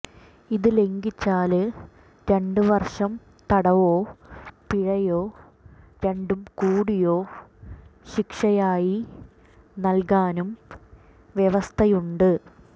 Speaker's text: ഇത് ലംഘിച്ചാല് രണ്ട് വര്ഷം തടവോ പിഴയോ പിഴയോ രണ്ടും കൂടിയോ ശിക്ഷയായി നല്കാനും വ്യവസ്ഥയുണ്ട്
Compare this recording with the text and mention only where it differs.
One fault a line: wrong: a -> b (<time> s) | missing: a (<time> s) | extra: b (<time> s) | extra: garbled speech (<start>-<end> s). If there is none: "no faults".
missing: പിഴയോ (5.2 s)